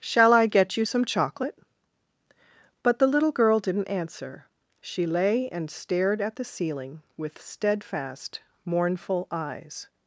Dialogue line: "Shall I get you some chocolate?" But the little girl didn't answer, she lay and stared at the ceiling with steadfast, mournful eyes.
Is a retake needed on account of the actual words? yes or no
no